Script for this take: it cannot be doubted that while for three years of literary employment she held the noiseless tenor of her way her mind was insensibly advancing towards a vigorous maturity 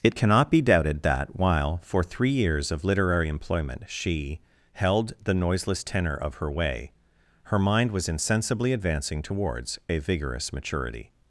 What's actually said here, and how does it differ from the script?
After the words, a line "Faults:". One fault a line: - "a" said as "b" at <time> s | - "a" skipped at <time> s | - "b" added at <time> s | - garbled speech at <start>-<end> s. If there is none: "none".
it cannot be doubted that while for three years of literary employment she held the noiseless tenor of her way her mind was insensibly advancing towards a vigorous maturity
Faults:
none